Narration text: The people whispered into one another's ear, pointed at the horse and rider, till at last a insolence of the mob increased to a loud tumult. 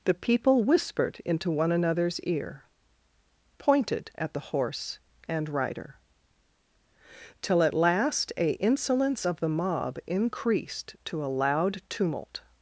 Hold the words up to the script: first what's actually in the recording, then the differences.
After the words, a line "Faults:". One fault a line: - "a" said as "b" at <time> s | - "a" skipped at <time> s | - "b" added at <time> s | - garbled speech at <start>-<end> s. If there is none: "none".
The people whispered into one another's ear, pointed at the horse and rider, till at last a insolence of the mob increased to a loud tumult.
Faults:
none